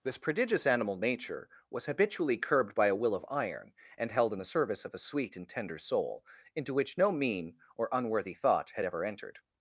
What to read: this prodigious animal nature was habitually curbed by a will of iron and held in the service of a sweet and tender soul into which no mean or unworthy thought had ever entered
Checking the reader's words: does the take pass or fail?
pass